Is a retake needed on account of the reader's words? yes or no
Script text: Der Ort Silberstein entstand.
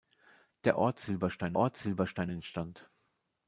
yes